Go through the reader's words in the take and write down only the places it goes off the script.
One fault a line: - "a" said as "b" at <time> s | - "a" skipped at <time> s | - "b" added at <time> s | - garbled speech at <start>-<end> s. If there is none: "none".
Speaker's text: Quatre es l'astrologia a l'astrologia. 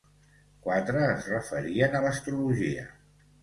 - "l'astrologia" said as "referien" at 1.3 s